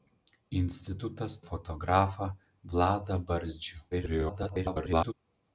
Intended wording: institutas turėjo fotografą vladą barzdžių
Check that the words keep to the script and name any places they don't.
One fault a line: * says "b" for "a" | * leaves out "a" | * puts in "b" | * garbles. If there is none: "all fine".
* leaves out "turėjo"
* garbles